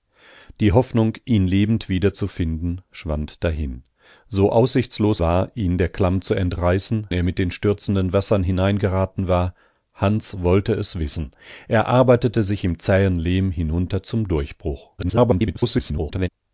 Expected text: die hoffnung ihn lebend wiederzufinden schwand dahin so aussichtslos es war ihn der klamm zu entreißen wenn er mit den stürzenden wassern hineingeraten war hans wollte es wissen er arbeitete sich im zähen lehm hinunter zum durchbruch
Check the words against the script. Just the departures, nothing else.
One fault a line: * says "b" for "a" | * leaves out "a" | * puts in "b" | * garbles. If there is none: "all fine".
* leaves out "es"
* leaves out "wenn"
* garbles